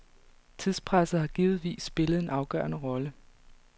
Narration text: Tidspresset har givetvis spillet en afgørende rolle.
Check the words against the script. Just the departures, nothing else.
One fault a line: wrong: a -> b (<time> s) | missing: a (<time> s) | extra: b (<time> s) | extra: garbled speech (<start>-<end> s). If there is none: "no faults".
no faults